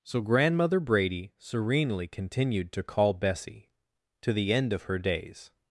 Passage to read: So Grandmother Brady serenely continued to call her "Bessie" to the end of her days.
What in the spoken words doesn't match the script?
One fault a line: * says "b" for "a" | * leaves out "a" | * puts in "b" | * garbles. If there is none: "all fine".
* leaves out "her"